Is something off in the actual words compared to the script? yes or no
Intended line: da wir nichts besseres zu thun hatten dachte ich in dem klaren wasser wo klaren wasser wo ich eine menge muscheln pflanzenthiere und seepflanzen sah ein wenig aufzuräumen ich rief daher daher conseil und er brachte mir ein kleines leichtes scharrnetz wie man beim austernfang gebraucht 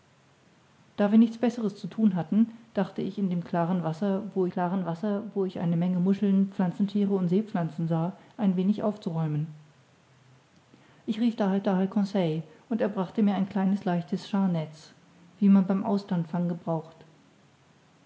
no